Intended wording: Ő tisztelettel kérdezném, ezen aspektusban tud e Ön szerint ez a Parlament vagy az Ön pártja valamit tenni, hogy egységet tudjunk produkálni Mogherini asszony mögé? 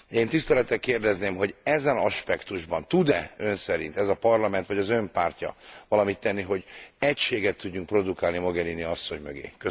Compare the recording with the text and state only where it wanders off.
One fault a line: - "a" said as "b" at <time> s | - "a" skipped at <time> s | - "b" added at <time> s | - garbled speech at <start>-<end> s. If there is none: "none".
- "Ő" said as "Én" at 0.1 s
- "hogy" added at 1.4 s